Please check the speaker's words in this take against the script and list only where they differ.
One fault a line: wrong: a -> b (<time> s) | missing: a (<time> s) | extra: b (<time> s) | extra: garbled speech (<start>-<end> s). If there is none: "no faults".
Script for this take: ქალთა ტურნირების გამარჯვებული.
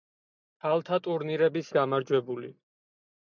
no faults